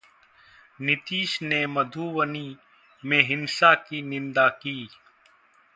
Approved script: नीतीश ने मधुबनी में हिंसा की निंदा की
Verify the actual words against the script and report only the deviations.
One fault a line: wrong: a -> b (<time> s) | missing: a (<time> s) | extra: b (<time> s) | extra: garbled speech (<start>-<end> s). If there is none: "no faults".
no faults